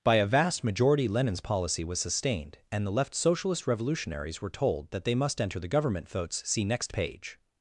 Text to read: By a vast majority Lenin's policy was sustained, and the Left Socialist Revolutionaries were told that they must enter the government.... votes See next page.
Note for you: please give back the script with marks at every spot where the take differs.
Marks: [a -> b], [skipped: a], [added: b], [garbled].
By a vast majority Lenin's policy was sustained, and the Left Socialist Revolutionaries were told that they must enter the government.... votes See next page.